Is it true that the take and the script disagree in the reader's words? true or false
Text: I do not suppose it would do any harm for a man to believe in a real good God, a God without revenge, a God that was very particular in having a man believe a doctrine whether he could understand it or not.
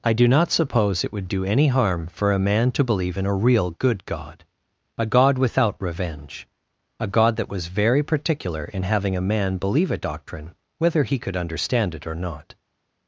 false